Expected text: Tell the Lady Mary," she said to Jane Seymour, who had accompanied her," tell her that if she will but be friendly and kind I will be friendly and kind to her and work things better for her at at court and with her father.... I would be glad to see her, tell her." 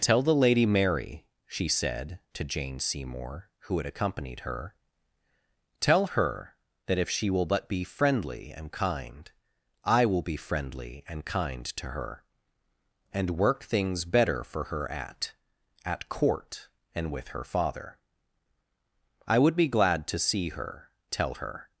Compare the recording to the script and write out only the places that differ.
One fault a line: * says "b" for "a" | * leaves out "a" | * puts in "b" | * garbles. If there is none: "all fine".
all fine